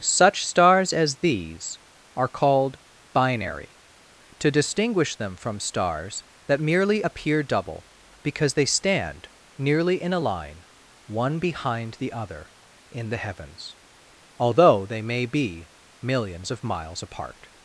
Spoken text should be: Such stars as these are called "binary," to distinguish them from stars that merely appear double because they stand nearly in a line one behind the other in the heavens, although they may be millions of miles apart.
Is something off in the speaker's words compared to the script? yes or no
no